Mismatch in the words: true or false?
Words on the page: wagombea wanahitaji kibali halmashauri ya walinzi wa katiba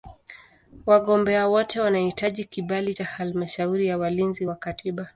true